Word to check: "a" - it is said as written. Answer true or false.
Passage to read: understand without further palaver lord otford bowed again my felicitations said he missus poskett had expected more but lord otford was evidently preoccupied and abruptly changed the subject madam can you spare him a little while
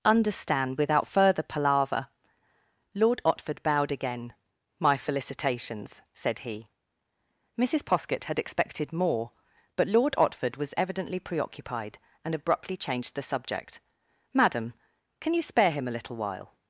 true